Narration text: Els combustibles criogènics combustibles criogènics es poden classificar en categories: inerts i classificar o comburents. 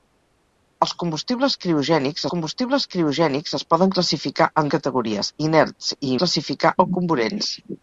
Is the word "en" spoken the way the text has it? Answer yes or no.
yes